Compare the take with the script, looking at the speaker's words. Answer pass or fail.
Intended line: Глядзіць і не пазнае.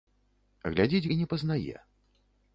pass